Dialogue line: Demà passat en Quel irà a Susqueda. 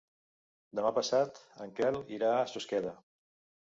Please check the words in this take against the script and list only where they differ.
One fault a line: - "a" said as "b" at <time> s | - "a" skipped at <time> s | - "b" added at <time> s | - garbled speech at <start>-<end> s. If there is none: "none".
none